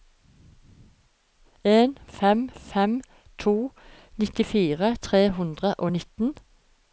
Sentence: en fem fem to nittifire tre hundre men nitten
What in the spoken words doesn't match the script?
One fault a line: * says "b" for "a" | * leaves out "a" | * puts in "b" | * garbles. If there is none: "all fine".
* says "og" for "men"